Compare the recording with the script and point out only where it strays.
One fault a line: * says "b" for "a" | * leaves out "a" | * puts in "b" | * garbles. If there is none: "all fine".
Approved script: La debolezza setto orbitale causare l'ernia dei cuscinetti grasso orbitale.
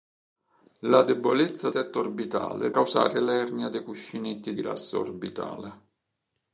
all fine